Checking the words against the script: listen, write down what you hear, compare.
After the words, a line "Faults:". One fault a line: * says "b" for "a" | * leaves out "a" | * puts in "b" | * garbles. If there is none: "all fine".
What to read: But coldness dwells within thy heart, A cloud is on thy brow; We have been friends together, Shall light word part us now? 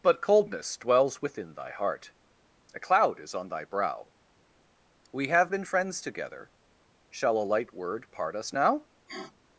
But coldness dwells within thy heart, A cloud is on thy brow; We have been friends together, Shall a light word part us now?
Faults:
* puts in "a"